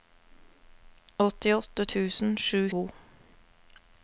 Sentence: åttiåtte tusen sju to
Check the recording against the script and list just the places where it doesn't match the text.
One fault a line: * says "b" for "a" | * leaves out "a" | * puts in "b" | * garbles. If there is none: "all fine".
all fine